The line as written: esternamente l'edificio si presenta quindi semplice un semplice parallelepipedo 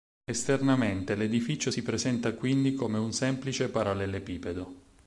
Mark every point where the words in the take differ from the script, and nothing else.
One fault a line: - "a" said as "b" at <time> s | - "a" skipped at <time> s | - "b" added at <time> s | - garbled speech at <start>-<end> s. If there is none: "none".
- "semplice" said as "come" at 2.7 s